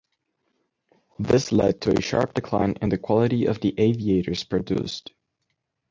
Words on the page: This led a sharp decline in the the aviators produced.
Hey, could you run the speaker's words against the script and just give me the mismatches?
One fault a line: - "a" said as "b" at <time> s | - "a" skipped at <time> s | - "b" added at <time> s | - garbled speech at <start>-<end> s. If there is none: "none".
- "to" added at 1.8 s
- "quality of" added at 3.0 s